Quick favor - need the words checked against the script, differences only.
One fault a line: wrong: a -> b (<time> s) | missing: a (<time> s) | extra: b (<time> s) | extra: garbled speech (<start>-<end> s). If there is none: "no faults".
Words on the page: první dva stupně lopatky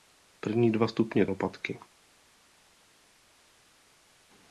no faults